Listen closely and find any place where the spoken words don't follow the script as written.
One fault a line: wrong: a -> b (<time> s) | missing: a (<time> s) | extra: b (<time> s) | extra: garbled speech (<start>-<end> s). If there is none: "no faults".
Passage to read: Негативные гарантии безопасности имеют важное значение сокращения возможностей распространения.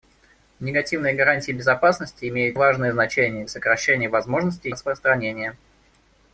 no faults